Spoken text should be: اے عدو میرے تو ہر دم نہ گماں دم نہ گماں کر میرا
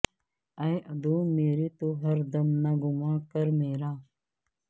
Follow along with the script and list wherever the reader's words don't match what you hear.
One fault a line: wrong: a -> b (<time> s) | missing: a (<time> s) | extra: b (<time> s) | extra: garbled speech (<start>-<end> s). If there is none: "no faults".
missing: دم نہ گماں (3.2 s)